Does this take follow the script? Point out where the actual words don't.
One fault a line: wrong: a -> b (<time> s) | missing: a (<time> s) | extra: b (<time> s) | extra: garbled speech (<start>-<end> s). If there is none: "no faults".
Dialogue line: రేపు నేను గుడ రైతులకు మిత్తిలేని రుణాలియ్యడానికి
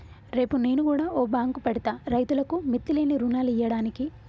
extra: ఓ బాంకు పెడ్తా (1.1 s)